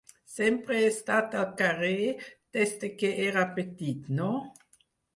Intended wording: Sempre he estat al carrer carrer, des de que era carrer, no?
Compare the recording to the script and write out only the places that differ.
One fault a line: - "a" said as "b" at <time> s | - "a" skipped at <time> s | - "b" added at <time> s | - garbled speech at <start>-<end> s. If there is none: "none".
- "carrer" skipped at 2.1 s
- "carrer" said as "petit" at 3.6 s